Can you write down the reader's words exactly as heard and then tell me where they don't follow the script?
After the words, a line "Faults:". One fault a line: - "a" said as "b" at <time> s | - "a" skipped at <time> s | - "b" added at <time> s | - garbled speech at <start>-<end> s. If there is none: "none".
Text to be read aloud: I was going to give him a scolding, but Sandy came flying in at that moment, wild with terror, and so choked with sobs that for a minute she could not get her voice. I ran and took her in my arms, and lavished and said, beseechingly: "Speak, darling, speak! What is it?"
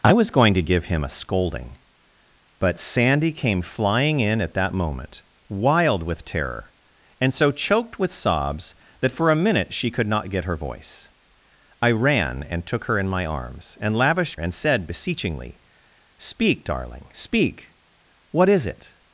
I was going to give him a scolding, but Sandy came flying in at that moment, wild with terror, and so choked with sobs that for a minute she could not get her voice. I ran and took her in my arms, and lavished and said, beseechingly: "Speak, darling, speak! What is it?"
Faults:
none